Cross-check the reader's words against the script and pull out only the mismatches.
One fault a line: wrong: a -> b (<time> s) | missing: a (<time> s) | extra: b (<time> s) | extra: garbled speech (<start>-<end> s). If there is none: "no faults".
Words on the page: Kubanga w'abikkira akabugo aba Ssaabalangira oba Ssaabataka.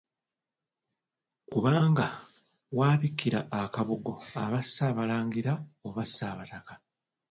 no faults